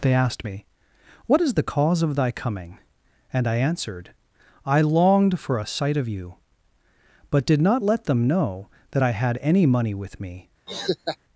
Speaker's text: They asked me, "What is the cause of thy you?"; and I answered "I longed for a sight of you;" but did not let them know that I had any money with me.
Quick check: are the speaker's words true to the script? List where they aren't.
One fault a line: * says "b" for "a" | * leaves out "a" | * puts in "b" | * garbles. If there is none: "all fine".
* says "coming" for "you"